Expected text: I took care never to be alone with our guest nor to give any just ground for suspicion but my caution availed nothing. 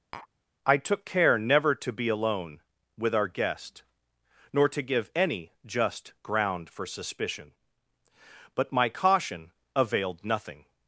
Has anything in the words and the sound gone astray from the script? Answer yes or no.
yes